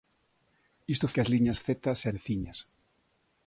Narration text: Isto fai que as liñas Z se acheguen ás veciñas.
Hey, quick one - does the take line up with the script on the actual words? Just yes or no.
no